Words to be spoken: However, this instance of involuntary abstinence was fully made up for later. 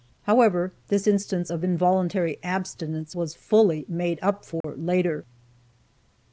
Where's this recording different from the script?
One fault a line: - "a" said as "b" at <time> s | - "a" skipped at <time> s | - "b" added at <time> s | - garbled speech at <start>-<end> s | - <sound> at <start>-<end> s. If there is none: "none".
- dropout at 4.6-4.6 s